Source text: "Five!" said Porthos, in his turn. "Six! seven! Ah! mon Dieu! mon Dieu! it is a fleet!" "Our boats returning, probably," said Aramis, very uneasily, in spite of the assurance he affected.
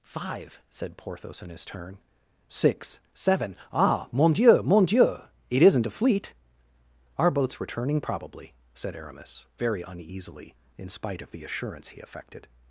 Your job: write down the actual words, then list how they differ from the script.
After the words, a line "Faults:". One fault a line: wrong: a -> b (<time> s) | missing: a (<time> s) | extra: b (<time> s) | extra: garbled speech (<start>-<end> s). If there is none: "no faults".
"Five!" said Porthos, in his turn. "Six! seven! Ah! mon Dieu! mon Dieu! it isn't a fleet!" "Our boats returning, probably," said Aramis, very uneasily, in spite of the assurance he affected.
Faults:
wrong: is -> isn't (5.6 s)